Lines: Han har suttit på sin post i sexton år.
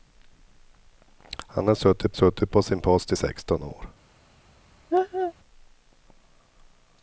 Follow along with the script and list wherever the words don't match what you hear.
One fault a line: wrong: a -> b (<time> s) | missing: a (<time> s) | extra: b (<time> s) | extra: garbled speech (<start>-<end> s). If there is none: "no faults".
extra: suttit (2.1 s)